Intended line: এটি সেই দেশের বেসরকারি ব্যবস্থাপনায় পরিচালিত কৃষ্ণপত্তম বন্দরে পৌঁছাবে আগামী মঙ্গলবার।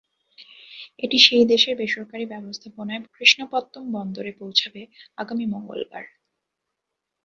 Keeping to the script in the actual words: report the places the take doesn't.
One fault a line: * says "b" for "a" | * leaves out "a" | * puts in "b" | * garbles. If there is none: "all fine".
* leaves out "পরিচালিত"